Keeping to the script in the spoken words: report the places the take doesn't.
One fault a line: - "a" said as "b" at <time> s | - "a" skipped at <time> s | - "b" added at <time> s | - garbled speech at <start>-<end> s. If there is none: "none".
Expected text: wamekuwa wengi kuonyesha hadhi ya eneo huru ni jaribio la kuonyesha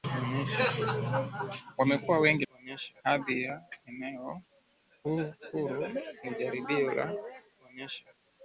none